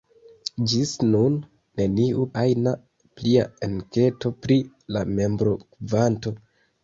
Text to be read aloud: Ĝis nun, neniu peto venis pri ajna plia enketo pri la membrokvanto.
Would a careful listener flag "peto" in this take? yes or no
yes